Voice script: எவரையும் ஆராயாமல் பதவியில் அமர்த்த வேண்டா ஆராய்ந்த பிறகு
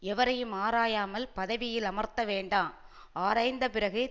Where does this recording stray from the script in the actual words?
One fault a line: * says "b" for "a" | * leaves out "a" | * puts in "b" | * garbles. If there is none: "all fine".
all fine